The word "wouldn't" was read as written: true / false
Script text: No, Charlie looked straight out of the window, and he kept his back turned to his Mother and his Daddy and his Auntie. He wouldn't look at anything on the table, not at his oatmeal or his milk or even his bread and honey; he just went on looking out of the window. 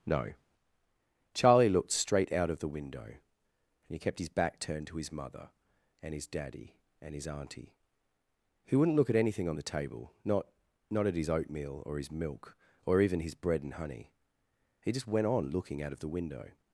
true